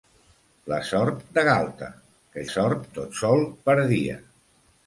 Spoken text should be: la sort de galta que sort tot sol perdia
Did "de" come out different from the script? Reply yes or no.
no